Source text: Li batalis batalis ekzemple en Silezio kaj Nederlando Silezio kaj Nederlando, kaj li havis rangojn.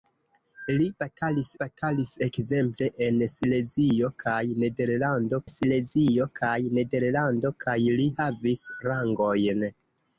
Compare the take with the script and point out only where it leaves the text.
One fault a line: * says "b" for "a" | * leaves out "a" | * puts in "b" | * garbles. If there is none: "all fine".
all fine